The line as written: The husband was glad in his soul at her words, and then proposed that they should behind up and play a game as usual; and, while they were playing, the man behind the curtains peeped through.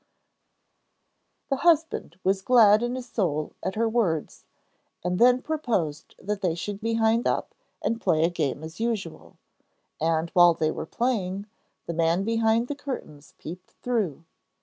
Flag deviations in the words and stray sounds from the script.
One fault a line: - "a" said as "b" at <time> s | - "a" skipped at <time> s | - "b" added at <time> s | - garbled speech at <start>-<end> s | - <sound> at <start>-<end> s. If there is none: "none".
none